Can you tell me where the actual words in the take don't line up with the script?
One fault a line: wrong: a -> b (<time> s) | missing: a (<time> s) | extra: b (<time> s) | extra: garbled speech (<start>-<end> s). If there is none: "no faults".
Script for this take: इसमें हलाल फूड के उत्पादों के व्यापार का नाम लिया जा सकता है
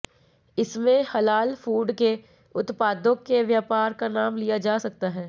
no faults